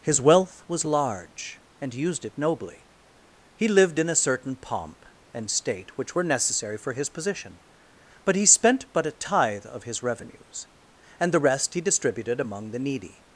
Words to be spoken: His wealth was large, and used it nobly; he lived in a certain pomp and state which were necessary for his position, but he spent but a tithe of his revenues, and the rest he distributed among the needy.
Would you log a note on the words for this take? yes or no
no